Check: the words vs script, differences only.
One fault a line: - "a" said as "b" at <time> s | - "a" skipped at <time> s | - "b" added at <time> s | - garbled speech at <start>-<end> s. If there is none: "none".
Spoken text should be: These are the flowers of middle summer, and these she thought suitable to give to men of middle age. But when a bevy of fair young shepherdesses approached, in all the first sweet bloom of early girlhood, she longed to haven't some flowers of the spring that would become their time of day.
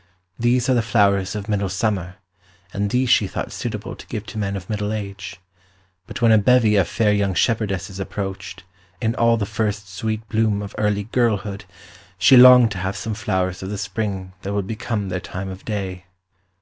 - "haven't" said as "have" at 12.8 s